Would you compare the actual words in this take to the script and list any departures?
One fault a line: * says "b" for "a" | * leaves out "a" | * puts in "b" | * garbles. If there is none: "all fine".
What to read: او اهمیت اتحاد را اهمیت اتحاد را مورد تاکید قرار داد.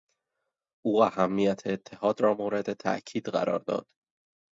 * leaves out "اهمیت اتحاد را"